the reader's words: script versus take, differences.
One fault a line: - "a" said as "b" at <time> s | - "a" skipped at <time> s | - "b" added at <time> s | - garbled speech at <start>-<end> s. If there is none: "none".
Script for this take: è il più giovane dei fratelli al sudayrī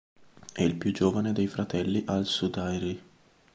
none